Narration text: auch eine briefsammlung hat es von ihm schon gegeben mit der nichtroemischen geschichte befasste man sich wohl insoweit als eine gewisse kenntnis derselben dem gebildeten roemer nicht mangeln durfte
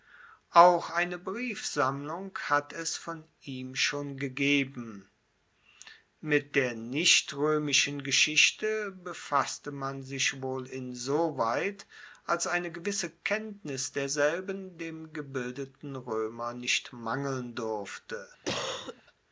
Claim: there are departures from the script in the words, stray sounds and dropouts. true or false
true